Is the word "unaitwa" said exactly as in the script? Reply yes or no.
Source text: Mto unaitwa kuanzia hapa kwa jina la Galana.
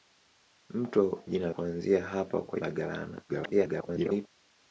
no